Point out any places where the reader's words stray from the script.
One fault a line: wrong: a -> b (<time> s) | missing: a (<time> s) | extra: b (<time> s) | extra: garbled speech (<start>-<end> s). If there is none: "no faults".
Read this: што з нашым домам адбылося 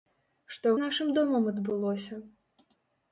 no faults